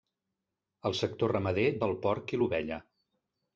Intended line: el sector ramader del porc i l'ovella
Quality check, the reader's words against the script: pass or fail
pass